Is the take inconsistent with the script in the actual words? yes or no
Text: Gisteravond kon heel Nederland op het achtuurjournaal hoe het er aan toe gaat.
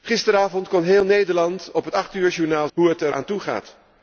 no